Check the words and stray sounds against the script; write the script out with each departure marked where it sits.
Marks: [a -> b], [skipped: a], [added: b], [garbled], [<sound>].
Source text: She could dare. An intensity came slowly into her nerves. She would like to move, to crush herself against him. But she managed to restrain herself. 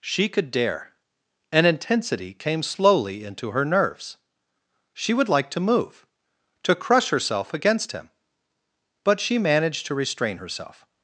She could dare. An intensity came slowly into her nerves. She would like to move, to crush herself against him. But she managed to restrain herself.